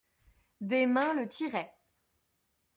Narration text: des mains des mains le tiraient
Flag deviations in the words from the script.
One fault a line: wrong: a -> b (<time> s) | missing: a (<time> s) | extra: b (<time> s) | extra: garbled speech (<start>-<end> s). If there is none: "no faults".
missing: des mains (1.1 s)